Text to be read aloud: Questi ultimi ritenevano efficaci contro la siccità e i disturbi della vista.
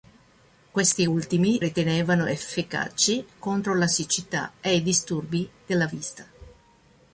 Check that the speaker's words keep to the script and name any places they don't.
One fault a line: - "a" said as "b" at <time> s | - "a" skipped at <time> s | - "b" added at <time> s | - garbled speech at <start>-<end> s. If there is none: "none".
none